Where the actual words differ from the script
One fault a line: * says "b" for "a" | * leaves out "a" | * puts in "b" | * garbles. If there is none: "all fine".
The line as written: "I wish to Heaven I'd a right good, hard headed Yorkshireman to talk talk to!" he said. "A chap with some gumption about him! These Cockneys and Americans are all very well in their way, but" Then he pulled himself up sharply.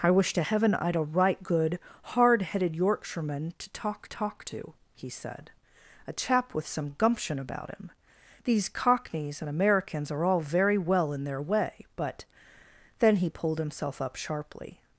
all fine